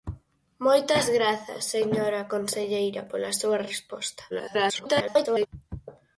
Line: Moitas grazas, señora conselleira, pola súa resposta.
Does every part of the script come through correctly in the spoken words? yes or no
no